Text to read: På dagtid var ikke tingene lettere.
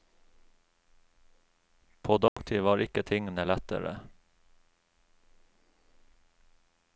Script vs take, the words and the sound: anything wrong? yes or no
yes